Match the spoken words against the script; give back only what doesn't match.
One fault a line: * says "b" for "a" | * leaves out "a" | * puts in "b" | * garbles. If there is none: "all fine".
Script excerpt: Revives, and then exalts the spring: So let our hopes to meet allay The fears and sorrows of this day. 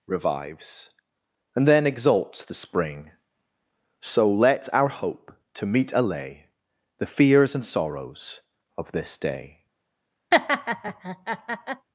* says "hope" for "hopes"